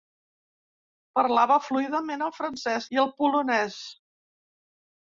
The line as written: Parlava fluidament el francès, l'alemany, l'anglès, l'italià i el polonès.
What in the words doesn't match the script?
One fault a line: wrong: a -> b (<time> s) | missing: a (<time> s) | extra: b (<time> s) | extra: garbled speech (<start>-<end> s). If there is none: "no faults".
missing: l'alemany l'anglès l'italià (2.9 s)